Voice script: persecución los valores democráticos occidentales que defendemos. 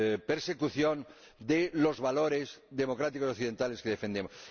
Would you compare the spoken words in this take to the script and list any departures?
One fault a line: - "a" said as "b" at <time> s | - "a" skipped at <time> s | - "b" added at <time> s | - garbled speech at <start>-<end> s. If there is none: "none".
- "de" added at 1.4 s